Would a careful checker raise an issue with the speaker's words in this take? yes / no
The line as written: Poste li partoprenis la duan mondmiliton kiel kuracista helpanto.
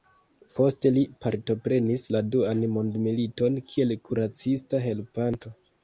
no